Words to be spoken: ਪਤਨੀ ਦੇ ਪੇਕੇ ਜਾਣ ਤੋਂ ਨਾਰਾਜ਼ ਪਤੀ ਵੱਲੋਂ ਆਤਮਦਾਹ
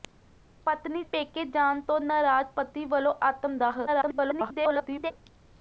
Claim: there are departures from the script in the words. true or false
true